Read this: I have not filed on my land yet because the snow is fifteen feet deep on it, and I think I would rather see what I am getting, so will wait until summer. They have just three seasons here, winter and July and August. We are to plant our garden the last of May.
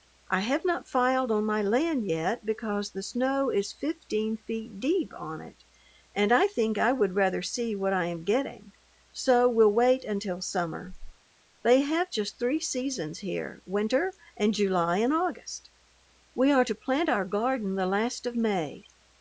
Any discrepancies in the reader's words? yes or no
no